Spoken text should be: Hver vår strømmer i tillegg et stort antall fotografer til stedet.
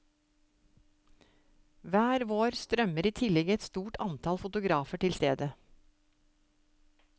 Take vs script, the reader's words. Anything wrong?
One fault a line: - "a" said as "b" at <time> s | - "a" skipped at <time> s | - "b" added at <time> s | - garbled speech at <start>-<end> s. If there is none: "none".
none